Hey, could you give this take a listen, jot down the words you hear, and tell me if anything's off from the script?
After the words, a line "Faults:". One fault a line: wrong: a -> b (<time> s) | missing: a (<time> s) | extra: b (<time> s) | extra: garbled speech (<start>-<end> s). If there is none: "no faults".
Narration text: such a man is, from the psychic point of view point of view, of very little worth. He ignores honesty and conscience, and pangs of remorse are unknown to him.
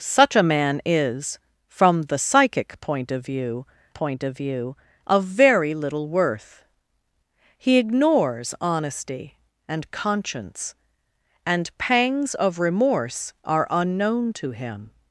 such a man is, from the psychic point of view point of view, of very little worth. He ignores honesty and conscience, and pangs of remorse are unknown to him.
Faults:
no faults